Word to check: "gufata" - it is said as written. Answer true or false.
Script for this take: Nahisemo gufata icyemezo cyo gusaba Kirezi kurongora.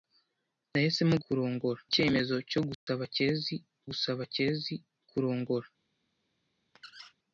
false